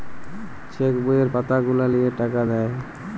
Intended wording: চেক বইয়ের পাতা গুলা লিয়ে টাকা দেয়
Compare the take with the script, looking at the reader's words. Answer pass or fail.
pass